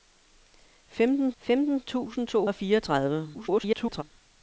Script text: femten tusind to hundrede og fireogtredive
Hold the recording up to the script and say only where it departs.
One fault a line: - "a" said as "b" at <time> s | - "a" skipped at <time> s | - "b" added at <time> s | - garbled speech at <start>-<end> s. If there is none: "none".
- "femten" added at 1.4 s
- "hundrede" skipped at 2.5 s
- garbled speech at 3.3-4.0 s